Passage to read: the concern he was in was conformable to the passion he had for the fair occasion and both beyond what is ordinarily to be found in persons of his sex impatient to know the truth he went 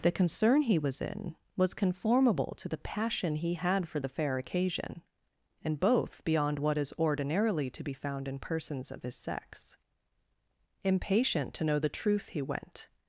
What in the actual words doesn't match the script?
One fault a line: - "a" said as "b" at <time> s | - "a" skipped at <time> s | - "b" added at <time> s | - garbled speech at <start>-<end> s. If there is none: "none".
none